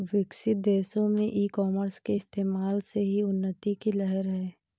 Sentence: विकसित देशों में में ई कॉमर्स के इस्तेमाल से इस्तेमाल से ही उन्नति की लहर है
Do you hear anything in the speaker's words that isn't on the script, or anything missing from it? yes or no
yes